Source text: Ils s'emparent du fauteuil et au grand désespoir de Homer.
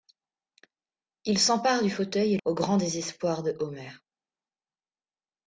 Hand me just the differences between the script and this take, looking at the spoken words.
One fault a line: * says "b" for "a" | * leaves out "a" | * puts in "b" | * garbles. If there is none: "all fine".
all fine